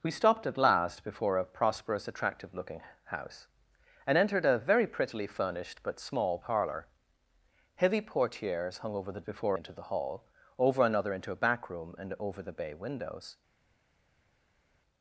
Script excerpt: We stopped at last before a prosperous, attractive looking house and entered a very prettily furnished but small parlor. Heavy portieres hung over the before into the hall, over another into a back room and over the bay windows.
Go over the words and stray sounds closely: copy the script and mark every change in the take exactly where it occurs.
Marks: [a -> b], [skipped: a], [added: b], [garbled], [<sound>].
We stopped at last before a prosperous, attractive looking house and entered a very prettily furnished but small parlor. Heavy portieres hung over the before into the hall, over another into a back room and over the bay windows.